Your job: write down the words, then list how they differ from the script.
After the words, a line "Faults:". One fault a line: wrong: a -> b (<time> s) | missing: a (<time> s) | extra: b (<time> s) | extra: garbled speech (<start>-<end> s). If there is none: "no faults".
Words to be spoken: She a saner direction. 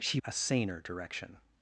She a saner direction.
Faults:
no faults